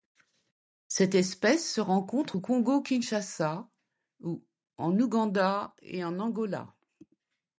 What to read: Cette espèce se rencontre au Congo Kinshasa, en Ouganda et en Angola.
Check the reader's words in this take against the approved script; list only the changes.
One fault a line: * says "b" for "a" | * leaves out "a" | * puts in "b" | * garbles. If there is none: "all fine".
all fine